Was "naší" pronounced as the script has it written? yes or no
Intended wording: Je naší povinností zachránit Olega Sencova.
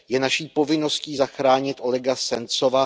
yes